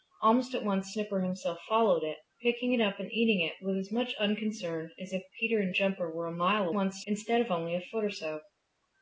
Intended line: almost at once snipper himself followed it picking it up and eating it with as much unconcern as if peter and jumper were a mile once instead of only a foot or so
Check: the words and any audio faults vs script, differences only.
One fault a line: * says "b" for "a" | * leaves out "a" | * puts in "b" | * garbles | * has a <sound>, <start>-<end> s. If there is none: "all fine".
all fine